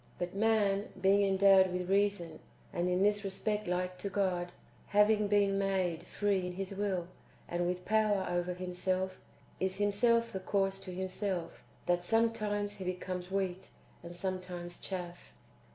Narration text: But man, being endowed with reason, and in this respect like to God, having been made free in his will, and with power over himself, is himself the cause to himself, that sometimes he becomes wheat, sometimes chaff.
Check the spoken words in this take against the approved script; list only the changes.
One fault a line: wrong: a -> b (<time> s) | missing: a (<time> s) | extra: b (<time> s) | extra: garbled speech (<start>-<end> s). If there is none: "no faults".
extra: and (14.0 s)